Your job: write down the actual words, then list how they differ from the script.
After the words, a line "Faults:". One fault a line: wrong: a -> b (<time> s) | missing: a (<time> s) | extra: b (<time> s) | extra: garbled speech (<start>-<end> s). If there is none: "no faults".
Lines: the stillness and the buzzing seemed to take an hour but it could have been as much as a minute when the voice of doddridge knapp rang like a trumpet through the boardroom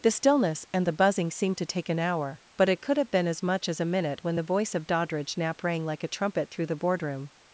the stillness and the buzzing seemed to take an hour but it could have been as much as a minute when the voice of doddridge knapp rang like a trumpet through the boardroom
Faults:
no faults